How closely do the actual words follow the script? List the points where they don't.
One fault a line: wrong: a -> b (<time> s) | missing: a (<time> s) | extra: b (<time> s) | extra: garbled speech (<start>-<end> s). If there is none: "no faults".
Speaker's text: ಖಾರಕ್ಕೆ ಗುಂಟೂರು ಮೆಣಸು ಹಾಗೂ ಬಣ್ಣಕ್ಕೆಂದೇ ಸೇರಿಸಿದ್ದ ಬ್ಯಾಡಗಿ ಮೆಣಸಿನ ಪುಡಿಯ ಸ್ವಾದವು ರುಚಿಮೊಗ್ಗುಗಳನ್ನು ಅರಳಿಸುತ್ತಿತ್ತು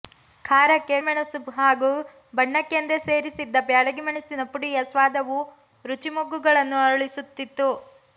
missing: ಗುಂಟೂರು (0.9 s)